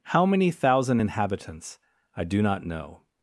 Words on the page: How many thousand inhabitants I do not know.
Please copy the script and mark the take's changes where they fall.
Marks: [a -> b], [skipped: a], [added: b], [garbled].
How many thousand inhabitants I do not know.